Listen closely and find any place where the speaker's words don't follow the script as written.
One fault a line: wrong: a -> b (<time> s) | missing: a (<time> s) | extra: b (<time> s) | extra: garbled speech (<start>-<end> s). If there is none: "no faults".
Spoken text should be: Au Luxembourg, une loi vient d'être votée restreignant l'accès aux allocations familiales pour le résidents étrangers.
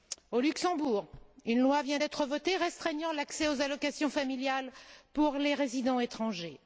wrong: le -> les (5.4 s)